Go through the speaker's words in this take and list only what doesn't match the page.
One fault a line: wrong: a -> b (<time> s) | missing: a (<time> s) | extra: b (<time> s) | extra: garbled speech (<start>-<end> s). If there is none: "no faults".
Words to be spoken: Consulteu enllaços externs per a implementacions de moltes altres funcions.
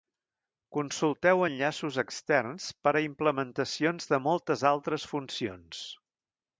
no faults